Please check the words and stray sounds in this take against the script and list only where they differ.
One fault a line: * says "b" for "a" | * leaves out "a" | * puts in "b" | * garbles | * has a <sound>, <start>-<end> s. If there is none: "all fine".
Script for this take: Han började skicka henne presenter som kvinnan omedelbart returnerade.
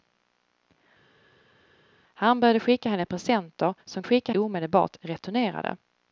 * says "skicka" for "kvinnan"